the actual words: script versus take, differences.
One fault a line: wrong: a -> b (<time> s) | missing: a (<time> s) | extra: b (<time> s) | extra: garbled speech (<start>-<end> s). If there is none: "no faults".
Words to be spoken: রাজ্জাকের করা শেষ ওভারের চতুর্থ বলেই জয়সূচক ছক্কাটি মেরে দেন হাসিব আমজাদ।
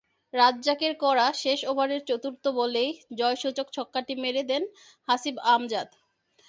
no faults